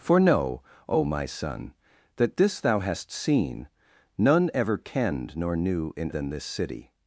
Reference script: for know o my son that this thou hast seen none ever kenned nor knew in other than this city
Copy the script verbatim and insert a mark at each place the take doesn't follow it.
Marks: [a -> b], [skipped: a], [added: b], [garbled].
for know o my son that this thou hast seen none ever kenned nor knew in [skipped: other] than this city